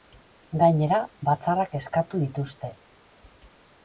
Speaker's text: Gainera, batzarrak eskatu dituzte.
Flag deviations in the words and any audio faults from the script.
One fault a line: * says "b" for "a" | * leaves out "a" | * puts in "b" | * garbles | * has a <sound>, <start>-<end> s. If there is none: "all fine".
all fine